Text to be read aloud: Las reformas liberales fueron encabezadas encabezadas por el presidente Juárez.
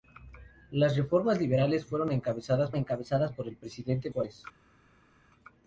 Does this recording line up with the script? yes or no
yes